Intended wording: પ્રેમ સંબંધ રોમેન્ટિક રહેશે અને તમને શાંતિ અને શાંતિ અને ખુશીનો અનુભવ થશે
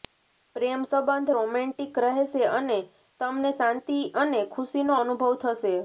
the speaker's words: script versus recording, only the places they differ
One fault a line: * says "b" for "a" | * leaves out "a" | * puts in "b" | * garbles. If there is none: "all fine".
* leaves out "શાંતિ અને"